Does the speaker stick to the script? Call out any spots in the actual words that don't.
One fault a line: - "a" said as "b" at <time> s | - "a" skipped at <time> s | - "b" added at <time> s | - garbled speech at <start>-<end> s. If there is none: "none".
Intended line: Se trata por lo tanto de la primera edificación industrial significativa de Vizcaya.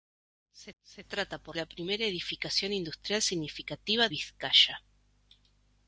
- "se" added at 0.8 s
- "lo tanto de" skipped at 1.6 s
- "de" skipped at 4.1 s